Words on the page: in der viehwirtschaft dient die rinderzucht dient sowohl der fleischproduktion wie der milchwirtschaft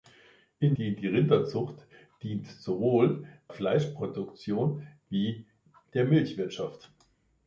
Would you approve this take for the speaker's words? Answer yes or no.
no